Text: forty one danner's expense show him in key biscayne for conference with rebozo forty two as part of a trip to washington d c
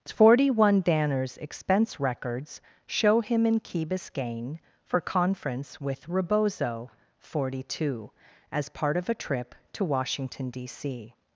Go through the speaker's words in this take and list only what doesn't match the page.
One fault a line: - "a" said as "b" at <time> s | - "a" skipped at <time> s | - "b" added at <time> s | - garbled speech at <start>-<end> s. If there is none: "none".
- "records" added at 2.0 s